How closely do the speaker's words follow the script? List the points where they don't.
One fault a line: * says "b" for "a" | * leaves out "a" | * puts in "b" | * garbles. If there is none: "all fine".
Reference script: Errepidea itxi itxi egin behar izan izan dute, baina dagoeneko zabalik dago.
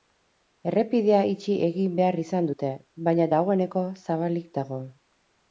* leaves out "itxi"
* leaves out "izan"